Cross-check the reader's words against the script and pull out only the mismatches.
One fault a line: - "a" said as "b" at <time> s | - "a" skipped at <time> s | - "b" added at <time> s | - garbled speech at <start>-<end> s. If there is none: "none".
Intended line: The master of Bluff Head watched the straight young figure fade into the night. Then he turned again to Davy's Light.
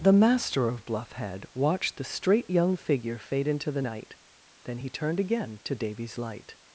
none